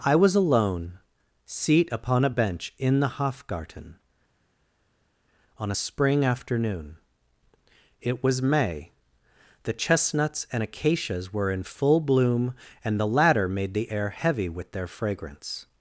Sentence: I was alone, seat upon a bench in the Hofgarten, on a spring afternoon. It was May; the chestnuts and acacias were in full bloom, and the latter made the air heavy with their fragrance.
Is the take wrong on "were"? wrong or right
right